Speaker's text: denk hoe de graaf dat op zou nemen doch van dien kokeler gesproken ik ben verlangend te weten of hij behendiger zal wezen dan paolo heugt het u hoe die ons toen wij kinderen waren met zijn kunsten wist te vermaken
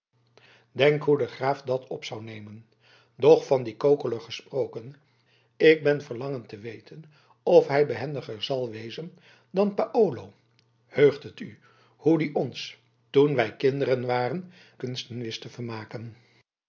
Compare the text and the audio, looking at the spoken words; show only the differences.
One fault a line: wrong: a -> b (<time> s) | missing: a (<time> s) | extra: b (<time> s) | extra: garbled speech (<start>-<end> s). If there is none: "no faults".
missing: met zijn (14.5 s)